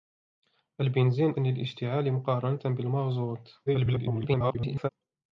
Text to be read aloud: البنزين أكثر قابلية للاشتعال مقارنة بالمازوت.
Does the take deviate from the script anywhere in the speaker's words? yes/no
yes